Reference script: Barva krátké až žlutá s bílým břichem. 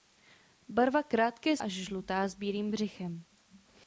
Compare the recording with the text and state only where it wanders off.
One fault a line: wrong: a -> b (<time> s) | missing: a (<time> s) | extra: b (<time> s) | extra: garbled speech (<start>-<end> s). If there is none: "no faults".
no faults